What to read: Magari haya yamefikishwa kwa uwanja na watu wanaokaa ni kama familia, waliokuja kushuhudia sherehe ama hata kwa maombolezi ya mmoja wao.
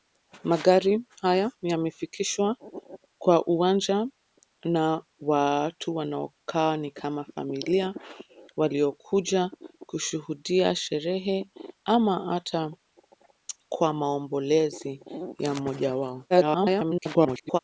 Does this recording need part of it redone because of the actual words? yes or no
yes